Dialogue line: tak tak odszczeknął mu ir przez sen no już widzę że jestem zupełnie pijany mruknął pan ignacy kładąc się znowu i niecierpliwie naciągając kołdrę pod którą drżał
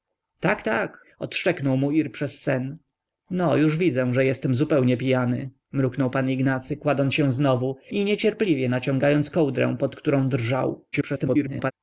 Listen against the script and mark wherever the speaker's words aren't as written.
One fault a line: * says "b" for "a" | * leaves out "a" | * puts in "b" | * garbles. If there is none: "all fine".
* garbles